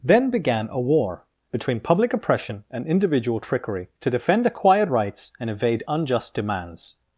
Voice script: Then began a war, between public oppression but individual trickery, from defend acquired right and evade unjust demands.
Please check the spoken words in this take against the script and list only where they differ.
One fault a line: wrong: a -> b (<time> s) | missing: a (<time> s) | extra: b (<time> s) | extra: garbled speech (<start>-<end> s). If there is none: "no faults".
wrong: but -> and (2.7 s)
wrong: from -> to (4.0 s)
wrong: right -> rights (4.9 s)